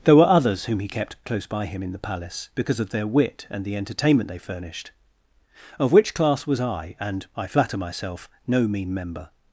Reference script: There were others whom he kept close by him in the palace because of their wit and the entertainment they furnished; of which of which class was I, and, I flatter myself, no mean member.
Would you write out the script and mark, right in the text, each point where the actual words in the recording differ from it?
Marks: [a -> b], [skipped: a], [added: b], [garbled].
There were others whom he kept close by him in the palace because of their wit and the entertainment they furnished; of which [skipped: of which] class was I, and, I flatter myself, no mean member.